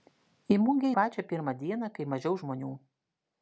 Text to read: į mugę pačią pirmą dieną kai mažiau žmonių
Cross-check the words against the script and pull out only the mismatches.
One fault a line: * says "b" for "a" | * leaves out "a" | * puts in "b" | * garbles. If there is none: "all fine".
all fine